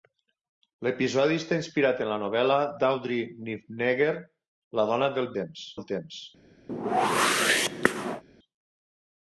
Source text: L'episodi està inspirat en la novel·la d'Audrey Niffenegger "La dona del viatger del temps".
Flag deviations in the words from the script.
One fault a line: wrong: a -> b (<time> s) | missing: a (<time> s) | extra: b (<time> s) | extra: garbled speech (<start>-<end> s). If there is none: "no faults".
wrong: viatger -> temps (5.4 s)